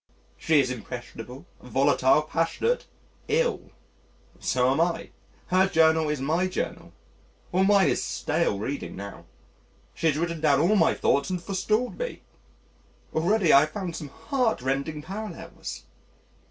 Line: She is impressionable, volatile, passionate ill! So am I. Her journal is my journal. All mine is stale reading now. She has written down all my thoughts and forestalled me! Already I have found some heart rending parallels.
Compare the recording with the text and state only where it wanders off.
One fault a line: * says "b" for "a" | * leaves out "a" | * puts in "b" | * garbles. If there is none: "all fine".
all fine